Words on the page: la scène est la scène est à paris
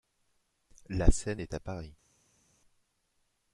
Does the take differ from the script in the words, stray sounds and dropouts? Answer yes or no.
yes